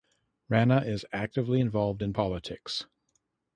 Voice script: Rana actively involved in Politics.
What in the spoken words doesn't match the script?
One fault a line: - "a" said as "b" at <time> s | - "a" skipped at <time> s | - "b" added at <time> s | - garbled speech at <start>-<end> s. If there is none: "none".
- "is" added at 0.8 s